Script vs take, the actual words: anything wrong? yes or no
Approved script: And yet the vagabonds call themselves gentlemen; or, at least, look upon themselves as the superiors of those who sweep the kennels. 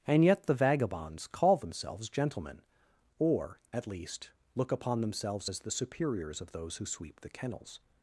no